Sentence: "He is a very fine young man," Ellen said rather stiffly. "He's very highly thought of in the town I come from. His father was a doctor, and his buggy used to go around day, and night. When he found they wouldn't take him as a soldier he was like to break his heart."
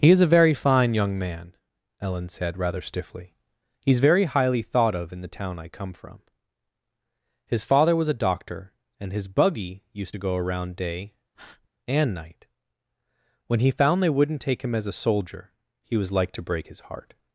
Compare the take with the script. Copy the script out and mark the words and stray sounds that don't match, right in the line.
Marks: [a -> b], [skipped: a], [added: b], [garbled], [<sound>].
"He is a very fine young man," Ellen said rather stiffly. "He's very highly thought of in the town I come from. His father was a doctor, and his buggy used to go around day, [breath] and night. When he found they wouldn't take him as a soldier he was like to break his heart."